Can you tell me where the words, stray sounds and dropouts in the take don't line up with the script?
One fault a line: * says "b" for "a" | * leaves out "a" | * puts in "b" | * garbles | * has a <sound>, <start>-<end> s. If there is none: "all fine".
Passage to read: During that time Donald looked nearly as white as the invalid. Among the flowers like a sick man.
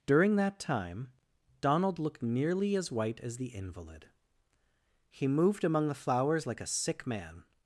* puts in "He moved"